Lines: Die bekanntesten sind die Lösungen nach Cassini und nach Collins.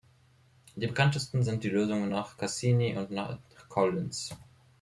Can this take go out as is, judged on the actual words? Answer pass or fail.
pass